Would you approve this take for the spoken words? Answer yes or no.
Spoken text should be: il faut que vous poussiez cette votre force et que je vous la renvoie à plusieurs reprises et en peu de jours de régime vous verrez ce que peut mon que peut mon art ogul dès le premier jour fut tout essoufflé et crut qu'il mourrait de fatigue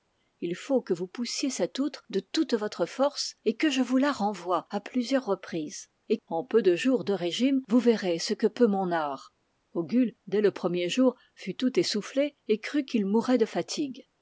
no